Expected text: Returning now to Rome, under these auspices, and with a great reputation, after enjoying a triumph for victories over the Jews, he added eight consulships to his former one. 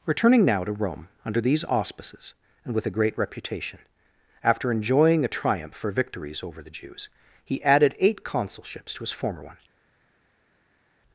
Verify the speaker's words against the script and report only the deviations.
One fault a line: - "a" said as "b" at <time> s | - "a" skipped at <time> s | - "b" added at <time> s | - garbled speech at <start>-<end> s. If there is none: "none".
none